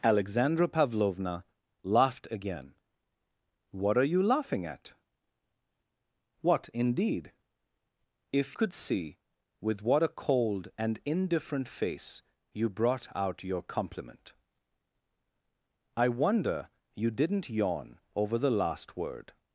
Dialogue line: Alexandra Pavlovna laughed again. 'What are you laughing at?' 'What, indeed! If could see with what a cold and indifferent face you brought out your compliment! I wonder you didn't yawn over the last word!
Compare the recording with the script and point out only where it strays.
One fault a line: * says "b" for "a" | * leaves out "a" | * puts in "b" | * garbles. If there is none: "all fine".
all fine